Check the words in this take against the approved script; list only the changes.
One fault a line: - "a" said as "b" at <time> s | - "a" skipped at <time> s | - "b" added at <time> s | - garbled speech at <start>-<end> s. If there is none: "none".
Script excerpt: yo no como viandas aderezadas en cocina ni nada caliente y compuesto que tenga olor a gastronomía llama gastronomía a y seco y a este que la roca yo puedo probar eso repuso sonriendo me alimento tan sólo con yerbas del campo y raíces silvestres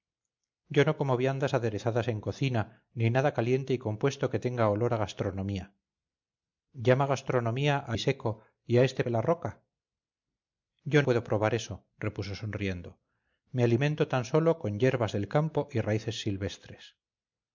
none